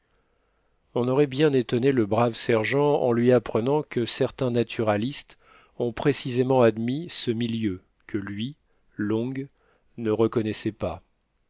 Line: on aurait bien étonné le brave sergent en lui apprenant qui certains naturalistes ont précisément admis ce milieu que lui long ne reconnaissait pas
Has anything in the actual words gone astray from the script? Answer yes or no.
yes